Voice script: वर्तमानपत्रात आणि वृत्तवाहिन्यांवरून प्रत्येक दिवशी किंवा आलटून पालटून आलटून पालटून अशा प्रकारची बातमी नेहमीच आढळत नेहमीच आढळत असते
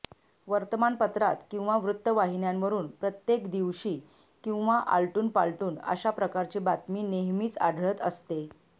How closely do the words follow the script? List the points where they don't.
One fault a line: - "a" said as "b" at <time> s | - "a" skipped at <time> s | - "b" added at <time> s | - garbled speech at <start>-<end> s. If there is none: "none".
- "आणि" said as "किंवा" at 1.5 s
- "आलटून पालटून" skipped at 5.8 s
- "नेहमीच आढळत" skipped at 8.0 s